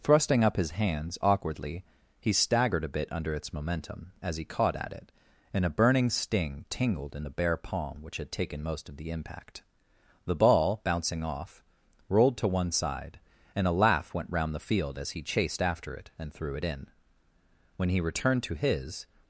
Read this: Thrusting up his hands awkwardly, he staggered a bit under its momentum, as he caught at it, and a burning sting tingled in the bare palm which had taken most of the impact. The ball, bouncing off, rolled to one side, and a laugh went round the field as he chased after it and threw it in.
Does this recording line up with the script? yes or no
no